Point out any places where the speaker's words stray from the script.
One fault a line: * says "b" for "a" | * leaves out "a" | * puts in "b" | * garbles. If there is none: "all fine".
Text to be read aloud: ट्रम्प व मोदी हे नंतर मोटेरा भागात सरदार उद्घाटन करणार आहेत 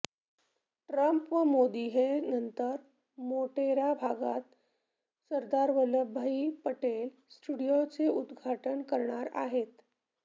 * puts in "वल्लभभाई पटेल स्टेडियमचे"